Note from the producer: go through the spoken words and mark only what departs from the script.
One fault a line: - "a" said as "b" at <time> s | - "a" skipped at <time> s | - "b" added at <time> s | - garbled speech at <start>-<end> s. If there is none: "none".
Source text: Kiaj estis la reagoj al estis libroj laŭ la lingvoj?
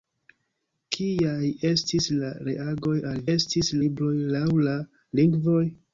none